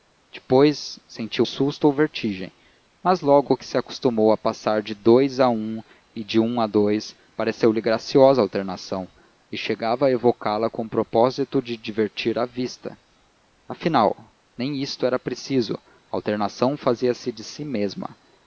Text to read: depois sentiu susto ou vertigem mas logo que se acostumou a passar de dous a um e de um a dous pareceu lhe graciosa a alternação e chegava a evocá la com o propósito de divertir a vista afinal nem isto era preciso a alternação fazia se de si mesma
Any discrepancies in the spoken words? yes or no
no